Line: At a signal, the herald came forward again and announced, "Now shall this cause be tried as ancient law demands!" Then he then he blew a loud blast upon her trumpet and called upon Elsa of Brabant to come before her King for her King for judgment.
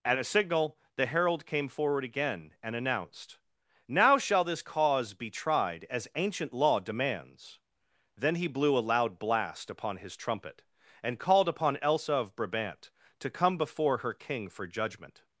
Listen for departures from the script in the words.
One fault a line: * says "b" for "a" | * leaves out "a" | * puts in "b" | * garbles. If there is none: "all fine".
* leaves out "then he"
* says "his" for "her"
* leaves out "her King for"